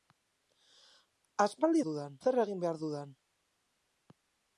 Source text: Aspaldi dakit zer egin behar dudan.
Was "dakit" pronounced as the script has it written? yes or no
no